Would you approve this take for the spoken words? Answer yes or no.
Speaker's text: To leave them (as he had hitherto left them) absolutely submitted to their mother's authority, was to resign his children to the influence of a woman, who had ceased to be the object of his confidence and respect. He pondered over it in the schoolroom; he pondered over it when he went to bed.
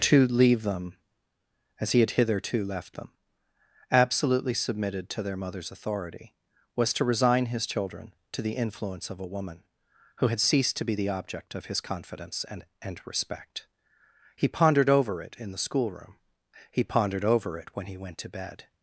no